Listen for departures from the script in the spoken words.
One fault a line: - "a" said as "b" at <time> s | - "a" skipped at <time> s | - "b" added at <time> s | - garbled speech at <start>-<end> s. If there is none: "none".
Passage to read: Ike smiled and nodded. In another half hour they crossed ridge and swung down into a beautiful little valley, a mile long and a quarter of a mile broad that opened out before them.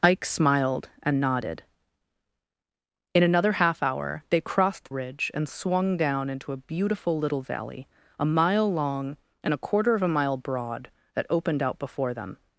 none